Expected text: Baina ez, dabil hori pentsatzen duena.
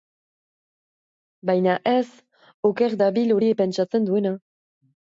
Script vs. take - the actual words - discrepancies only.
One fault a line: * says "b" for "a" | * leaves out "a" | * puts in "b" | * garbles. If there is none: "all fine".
* puts in "oker"